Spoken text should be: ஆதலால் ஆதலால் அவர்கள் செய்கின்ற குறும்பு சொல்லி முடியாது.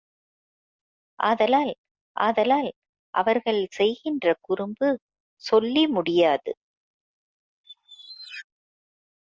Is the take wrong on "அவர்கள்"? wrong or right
right